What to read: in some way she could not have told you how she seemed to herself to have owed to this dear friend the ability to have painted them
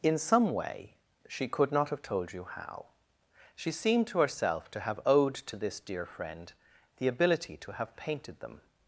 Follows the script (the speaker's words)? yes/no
yes